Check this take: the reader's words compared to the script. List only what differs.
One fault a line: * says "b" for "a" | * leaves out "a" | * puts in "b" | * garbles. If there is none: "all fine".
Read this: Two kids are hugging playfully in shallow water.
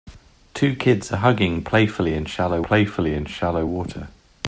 * puts in "playfully in shallow"